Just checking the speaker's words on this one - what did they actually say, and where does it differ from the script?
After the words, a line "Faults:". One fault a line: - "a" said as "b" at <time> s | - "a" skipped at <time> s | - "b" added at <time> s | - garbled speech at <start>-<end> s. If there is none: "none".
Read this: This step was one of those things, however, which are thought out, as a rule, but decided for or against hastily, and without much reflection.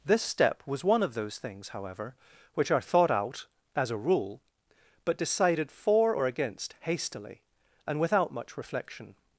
This step was one of those things, however, which are thought out, as a rule, but decided for or against hastily, and without much reflection.
Faults:
none